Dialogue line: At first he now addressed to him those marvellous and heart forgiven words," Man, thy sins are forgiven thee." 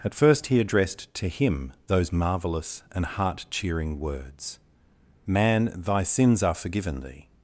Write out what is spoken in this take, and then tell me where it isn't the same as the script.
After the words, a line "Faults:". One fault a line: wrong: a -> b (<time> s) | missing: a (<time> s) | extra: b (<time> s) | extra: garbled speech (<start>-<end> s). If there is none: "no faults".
At first he addressed to him those marvellous and heart cheering words," Man, thy sins are forgiven thee."
Faults:
missing: now (0.6 s)
wrong: forgiven -> cheering (3.5 s)